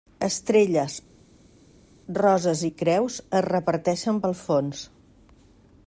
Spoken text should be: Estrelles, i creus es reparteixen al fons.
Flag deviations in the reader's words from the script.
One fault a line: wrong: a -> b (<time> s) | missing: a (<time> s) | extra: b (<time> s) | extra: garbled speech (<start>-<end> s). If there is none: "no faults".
extra: roses (2.2 s)
wrong: al -> pel (4.3 s)